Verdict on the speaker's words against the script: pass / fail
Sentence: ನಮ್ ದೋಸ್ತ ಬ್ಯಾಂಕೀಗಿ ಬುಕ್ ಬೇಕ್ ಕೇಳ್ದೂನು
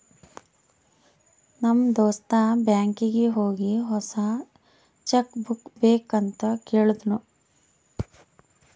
fail